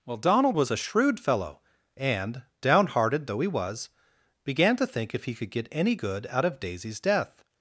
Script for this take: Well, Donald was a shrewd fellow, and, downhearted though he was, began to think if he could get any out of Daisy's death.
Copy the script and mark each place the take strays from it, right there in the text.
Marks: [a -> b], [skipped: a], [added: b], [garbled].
Well, Donald was a shrewd fellow, and, downhearted though he was, began to think if he could get any [added: good] out of Daisy's death.